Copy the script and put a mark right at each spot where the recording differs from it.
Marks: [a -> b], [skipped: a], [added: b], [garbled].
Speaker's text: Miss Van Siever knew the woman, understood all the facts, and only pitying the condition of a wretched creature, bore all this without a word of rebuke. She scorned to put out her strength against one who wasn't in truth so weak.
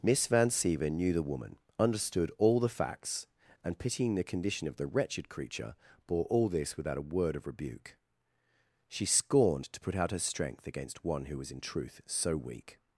Miss Van Siever knew the woman, understood all the facts, and [skipped: only] pitying the condition of [a -> the] wretched creature, bore all this without a word of rebuke. She scorned to put out her strength against one who [wasn't -> was] in truth so weak.